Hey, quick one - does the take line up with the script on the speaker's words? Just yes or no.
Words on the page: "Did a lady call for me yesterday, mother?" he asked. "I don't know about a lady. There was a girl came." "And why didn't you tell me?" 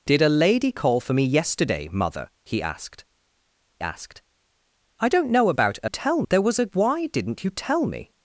no